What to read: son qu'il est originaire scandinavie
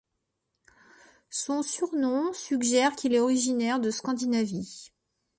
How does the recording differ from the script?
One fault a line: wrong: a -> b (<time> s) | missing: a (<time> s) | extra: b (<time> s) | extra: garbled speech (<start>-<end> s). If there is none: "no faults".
extra: surnom suggère (1.6 s)
extra: de (3.8 s)